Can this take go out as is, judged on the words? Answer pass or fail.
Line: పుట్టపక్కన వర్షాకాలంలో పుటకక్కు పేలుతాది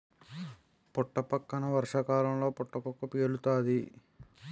pass